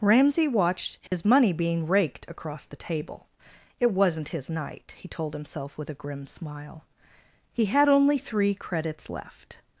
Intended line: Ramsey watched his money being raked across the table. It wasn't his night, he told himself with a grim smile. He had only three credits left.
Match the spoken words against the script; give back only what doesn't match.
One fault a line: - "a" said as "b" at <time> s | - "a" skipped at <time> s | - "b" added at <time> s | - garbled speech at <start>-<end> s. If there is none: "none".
none